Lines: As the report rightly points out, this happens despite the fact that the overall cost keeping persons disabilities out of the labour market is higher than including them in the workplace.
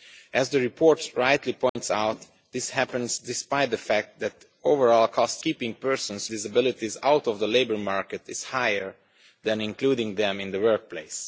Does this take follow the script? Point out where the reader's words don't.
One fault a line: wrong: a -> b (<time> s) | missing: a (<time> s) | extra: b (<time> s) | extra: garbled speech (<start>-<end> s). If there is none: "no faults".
no faults